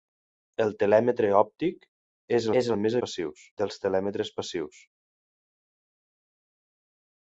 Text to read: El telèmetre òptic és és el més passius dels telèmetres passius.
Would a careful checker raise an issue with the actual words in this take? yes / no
no